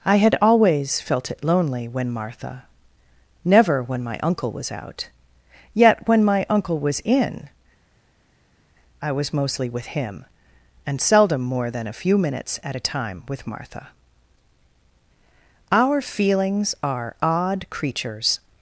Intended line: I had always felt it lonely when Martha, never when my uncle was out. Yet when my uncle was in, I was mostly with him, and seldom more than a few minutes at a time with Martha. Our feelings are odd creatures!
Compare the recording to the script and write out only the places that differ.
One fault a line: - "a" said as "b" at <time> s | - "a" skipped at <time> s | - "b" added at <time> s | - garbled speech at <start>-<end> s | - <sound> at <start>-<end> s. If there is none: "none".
none